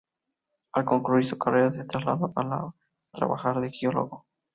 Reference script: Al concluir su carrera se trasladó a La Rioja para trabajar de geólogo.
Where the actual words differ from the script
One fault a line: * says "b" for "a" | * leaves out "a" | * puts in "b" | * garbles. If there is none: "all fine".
* leaves out "Rioja para"